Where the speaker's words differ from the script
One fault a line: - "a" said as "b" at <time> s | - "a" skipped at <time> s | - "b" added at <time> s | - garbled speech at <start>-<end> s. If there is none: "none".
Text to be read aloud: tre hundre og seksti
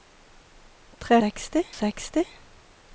- "hundre" said as "seksti" at 1.2 s